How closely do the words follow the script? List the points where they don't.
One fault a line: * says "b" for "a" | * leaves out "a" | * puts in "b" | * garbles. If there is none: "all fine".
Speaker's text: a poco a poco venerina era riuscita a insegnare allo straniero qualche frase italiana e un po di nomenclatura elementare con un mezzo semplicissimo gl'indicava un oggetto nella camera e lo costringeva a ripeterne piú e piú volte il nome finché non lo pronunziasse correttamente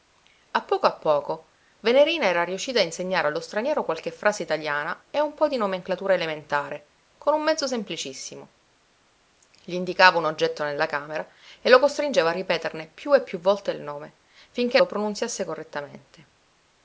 * leaves out "non"